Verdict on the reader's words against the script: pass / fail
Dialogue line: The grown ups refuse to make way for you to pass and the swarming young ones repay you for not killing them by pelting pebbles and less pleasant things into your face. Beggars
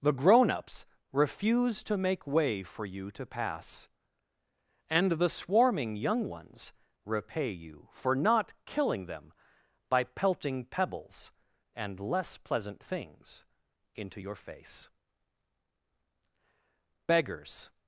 pass